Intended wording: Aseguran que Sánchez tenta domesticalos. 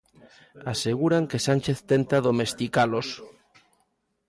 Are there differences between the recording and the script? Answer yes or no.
no